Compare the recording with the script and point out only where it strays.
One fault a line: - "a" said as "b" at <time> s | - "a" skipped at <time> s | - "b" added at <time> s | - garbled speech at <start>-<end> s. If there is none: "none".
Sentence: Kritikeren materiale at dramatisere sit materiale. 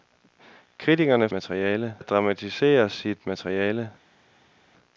none